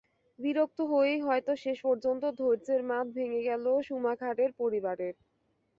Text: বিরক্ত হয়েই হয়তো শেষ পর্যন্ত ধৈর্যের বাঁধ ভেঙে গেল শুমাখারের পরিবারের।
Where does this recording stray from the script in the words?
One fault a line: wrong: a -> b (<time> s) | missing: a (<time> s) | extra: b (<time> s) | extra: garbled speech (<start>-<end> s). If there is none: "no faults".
no faults